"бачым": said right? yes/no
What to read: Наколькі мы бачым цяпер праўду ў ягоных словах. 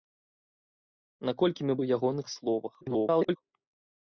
no